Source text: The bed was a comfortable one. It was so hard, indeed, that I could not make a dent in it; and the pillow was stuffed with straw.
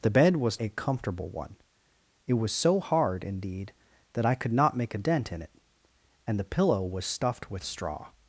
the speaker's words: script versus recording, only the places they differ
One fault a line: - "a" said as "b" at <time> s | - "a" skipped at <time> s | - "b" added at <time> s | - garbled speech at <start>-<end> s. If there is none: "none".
none